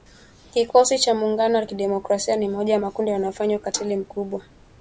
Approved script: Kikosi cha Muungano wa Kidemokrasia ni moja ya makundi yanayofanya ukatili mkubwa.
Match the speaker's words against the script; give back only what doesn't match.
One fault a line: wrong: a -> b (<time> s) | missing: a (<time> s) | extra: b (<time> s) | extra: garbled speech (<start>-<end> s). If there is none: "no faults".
no faults